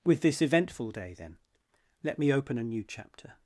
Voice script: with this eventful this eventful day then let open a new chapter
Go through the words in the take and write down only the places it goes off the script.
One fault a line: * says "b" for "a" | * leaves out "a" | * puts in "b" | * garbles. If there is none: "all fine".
* leaves out "this eventful"
* puts in "me"